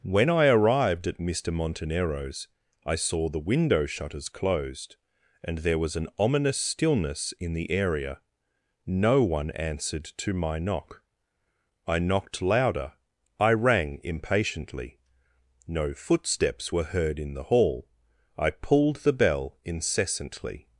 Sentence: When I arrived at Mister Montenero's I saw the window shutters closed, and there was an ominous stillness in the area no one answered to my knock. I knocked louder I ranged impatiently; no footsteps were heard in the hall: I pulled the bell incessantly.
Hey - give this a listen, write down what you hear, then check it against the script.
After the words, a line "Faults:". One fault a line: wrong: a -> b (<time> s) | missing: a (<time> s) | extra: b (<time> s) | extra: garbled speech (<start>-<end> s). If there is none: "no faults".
When I arrived at Mister Montenero's I saw the window shutters closed, and there was an ominous stillness in the area no one answered to my knock. I knocked louder I rang impatiently; no footsteps were heard in the hall: I pulled the bell incessantly.
Faults:
wrong: ranged -> rang (13.5 s)